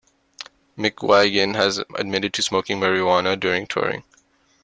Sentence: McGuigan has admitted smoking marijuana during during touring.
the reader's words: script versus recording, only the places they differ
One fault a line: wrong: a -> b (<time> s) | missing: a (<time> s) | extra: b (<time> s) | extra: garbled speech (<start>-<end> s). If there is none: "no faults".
extra: to (2.3 s)
missing: during (3.7 s)